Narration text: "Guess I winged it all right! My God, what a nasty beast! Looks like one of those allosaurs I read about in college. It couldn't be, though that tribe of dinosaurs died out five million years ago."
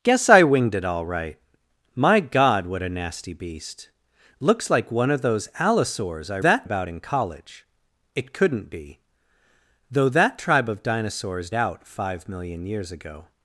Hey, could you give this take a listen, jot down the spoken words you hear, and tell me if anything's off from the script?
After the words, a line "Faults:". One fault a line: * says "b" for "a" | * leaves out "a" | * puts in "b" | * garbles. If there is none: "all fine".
"Guess I winged it all right! My God, what a nasty beast! Looks like one of those allosaurs I that about in college. It couldn't be, though that tribe of dinosaurs out five million years ago."
Faults:
* says "that" for "read"
* leaves out "died"